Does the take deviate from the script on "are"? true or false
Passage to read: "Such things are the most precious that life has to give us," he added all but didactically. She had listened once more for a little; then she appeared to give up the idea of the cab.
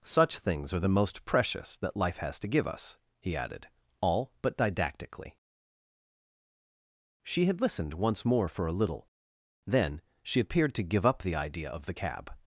false